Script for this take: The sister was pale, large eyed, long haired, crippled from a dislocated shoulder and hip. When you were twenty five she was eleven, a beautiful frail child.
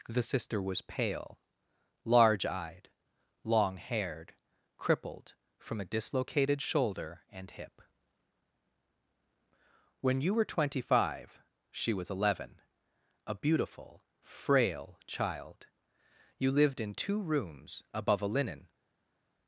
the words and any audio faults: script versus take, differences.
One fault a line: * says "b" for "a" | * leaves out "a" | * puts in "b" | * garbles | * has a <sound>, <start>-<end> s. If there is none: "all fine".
* puts in "You lived in two rooms above a linen"